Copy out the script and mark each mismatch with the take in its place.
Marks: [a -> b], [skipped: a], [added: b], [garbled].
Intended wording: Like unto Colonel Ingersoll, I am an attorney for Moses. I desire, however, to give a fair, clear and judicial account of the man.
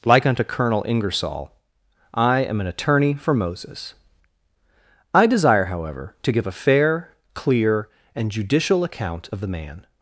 Like unto Colonel Ingersoll, I am an attorney for Moses. I desire, however, to give a fair, clear and judicial account of the man.